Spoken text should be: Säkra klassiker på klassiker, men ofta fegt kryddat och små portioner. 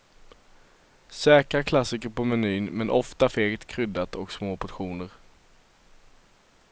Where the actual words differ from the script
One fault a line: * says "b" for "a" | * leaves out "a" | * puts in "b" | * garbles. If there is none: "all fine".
* says "menyn" for "klassiker"